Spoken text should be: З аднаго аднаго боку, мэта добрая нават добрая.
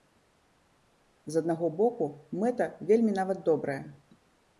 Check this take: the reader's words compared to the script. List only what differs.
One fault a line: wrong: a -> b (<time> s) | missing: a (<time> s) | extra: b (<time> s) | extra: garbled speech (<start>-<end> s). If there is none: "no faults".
missing: аднаго (1.7 s)
wrong: добрая -> вельмі (2.9 s)